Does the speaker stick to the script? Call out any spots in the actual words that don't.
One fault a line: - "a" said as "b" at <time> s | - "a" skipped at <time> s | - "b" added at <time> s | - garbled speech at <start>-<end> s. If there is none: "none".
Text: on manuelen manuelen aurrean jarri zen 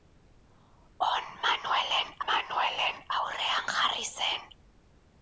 none